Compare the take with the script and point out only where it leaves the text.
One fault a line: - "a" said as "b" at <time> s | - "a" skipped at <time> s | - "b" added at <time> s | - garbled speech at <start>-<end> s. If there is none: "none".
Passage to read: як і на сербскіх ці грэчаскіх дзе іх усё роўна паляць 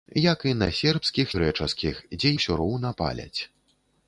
- "ці" skipped at 1.3 s
- "іх" skipped at 2.3 s